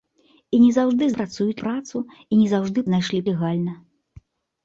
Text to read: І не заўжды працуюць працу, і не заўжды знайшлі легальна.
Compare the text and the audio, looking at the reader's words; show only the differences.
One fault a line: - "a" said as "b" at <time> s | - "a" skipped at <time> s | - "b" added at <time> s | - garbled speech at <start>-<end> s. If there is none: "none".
none